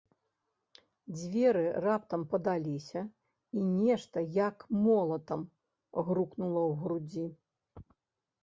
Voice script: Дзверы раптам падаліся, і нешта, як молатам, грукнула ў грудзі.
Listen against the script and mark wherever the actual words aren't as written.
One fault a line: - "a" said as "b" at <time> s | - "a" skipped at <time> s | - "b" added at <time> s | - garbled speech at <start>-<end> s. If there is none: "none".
none